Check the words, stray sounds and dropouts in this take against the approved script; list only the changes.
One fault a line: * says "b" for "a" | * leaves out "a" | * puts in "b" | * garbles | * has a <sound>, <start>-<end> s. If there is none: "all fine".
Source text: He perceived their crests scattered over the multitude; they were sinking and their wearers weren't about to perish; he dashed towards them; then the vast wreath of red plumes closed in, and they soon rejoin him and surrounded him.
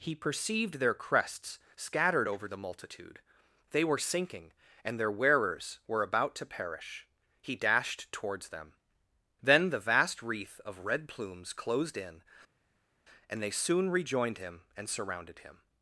* says "were" for "weren't"
* says "rejoined" for "rejoin"